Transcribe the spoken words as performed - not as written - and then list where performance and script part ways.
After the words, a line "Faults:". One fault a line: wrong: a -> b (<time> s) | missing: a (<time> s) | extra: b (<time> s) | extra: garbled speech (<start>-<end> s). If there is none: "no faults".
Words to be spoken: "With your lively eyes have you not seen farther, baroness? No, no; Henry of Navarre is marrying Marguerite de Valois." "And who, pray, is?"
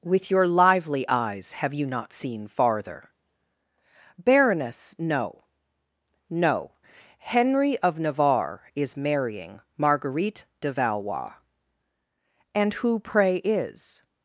"With your lively eyes have you not seen farther, baroness? No, no; Henry of Navarre is marrying Marguerite de Valois." "And who, pray, is?"
Faults:
no faults